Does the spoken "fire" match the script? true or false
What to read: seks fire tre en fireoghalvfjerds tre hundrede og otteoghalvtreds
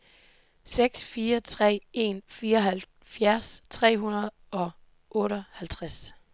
true